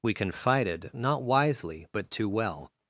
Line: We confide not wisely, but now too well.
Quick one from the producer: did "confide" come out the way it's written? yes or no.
no